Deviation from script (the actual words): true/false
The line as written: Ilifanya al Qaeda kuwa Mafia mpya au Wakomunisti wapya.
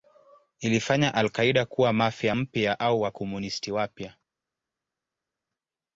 false